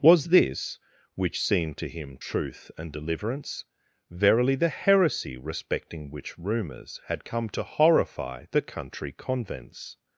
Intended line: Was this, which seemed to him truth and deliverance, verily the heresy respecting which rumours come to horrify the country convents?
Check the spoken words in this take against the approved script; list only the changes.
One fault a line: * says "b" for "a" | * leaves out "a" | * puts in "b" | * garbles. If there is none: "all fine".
* puts in "had"